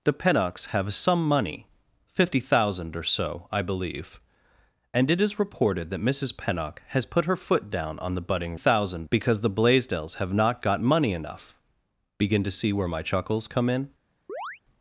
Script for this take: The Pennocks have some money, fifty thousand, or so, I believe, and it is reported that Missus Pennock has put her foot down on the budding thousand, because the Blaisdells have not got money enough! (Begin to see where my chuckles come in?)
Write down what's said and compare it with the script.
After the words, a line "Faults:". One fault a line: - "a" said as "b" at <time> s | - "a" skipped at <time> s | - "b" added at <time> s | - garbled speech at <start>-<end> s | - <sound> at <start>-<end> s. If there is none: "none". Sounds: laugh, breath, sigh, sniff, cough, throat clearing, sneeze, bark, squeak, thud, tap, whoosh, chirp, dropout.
The Pennocks have some money, fifty thousand, or so, I believe, and it is reported that Missus Pennock has put her foot down on the budding thousand, because the Blaisdells have not got money enough! (Begin to see where my chuckles come in?)
Faults:
- chirp at 14.3-14.6 s